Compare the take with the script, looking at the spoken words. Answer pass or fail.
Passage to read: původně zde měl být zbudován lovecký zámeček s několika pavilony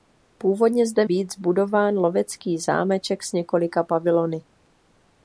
fail